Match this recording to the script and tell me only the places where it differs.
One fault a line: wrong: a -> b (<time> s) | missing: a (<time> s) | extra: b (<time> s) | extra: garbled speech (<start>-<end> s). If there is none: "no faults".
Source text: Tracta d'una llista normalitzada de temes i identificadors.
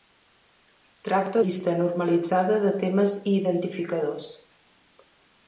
missing: d'una (1.4 s)